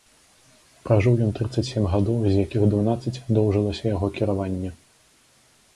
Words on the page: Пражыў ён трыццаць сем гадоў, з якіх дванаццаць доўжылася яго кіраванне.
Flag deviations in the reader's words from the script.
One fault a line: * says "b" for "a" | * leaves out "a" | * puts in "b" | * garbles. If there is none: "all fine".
all fine